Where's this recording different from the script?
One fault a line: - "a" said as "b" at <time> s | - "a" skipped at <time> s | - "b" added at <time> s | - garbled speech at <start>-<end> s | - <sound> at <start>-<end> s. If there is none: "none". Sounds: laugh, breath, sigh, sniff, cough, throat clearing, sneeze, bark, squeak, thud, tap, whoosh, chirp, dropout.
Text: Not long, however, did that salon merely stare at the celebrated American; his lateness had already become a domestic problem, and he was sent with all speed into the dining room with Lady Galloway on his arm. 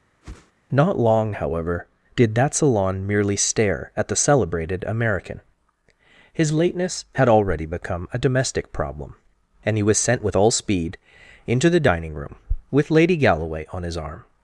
- whoosh at 0.2-0.5 s